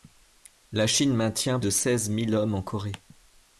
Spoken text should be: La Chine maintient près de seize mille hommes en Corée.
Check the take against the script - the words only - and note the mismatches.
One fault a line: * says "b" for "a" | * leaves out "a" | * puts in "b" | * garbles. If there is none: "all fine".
* leaves out "près"